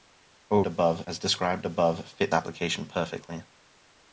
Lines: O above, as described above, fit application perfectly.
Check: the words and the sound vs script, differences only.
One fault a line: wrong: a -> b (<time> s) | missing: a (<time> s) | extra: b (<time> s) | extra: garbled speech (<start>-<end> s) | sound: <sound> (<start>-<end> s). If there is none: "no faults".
no faults